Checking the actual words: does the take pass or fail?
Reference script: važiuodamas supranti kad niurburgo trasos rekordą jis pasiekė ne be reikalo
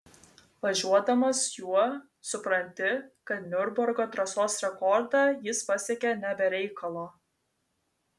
fail